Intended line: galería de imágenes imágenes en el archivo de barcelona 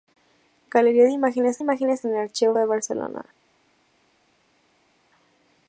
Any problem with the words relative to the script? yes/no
no